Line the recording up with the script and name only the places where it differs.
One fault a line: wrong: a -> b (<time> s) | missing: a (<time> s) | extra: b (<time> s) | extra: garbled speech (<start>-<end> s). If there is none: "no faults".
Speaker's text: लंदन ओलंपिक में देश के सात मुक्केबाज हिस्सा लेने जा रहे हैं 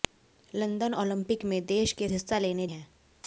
missing: सात मुक्केबाज (2.1 s)
missing: जा रहे (2.7 s)